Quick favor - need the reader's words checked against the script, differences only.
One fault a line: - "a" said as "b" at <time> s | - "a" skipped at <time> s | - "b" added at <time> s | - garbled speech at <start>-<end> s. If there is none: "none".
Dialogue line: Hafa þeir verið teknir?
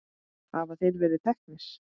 none